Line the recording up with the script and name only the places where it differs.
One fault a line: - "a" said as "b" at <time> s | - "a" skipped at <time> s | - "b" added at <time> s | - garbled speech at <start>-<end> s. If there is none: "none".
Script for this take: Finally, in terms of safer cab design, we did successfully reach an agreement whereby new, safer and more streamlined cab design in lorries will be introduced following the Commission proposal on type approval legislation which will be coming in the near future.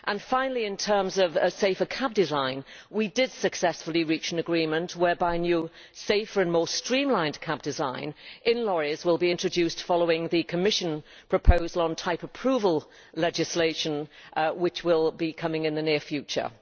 none